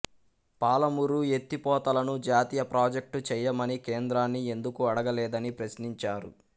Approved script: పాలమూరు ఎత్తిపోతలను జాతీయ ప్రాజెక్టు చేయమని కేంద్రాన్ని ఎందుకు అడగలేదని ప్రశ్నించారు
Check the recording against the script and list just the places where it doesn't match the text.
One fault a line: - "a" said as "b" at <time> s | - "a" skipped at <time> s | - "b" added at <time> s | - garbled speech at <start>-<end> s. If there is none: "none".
none